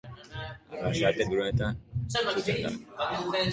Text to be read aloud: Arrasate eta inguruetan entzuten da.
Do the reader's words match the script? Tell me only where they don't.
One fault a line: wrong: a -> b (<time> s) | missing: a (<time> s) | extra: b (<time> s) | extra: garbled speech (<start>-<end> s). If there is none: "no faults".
missing: eta (1.2 s)